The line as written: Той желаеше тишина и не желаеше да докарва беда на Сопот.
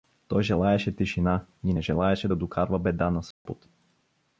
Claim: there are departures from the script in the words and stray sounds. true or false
true